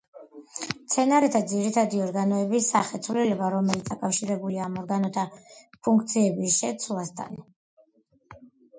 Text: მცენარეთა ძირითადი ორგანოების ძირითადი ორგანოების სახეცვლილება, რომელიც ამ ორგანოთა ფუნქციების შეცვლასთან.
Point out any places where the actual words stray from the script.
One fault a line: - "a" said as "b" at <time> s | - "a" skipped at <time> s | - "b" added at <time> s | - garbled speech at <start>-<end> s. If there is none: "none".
- "ძირითადი ორგანოების" skipped at 2.7 s
- "დაკავშირებულია" added at 3.9 s